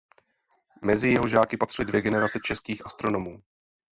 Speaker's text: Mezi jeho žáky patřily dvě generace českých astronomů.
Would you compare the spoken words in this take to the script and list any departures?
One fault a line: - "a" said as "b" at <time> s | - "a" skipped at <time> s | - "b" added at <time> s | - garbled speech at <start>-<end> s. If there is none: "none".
none